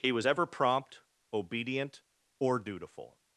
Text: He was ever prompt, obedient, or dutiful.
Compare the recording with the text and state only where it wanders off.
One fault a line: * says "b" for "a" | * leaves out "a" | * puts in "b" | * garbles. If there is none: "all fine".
all fine